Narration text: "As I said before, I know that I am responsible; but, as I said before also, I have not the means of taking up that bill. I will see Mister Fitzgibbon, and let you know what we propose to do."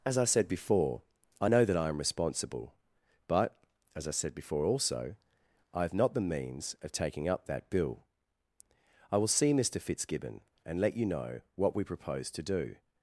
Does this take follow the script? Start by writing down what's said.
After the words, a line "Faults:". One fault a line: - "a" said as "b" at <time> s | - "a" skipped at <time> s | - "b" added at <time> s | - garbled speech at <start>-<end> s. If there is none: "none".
"As I said before, I know that I am responsible; but, as I said before also, I have not the means of taking up that bill. I will see Mister Fitzgibbon, and let you know what we propose to do."
Faults:
none